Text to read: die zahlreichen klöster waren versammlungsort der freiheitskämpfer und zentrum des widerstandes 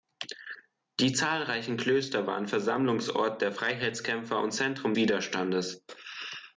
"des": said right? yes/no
no